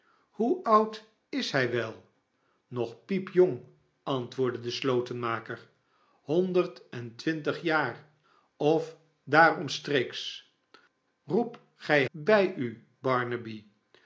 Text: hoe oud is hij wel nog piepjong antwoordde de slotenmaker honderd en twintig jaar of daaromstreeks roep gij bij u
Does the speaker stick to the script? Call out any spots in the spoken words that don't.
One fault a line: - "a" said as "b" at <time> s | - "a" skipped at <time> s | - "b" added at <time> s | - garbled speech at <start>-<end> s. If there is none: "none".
none